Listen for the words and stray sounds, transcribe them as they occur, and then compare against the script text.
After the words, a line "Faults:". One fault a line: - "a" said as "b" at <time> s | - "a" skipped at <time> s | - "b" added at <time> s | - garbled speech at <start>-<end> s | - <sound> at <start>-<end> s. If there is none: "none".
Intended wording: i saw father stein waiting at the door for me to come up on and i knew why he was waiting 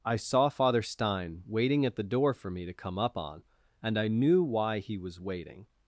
i saw father stein waiting at the door for me to come up on and i knew why he was waiting
Faults:
none